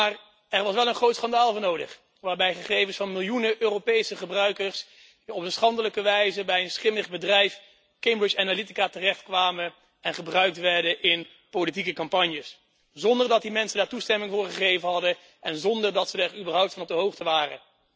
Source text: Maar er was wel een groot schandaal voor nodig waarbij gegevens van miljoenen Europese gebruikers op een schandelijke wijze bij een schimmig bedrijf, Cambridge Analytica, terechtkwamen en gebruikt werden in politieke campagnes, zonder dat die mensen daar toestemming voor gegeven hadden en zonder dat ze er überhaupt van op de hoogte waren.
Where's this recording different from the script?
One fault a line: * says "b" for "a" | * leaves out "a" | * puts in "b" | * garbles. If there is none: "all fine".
all fine